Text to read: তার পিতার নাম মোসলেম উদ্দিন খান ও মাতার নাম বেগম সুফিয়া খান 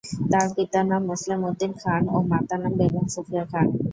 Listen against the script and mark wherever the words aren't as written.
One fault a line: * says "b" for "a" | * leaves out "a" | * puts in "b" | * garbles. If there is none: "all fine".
all fine